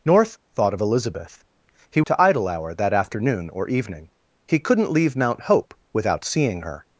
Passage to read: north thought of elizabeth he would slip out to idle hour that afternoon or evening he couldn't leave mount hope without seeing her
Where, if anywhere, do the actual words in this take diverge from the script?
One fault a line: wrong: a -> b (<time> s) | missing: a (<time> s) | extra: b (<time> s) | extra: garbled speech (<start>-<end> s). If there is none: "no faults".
missing: would slip out (2.0 s)